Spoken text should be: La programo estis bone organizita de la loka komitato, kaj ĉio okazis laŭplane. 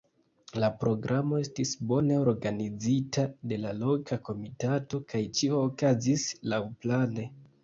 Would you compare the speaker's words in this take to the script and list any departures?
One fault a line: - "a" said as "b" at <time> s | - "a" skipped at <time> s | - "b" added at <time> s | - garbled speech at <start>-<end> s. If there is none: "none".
none